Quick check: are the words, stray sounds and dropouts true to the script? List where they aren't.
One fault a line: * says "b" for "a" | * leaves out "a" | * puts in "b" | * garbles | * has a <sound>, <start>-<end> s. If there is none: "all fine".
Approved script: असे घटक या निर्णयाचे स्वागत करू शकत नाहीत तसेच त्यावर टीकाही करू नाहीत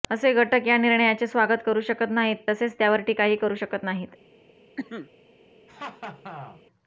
* puts in "शकत"
* has a cough, 4.8-5.1 s
* has a laugh, 5.7-6.6 s